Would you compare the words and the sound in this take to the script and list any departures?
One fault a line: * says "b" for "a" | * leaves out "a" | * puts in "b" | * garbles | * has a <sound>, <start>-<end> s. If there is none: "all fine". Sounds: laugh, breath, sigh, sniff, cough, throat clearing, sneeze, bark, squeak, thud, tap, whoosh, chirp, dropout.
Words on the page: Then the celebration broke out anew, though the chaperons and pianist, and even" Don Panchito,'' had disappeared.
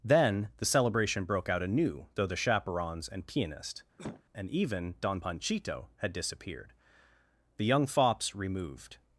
* has a cough, 4.0-4.2 s
* puts in "The young fops removed"